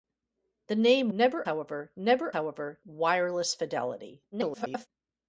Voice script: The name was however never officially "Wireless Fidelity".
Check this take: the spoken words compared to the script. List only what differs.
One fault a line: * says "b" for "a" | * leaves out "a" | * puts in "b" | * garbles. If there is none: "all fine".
* says "never" for "was"
* says "however" for "officially"
* garbles